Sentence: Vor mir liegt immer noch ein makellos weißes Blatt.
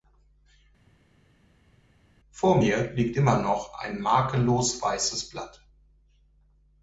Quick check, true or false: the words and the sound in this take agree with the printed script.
true